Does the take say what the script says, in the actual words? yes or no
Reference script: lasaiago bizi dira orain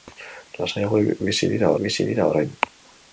no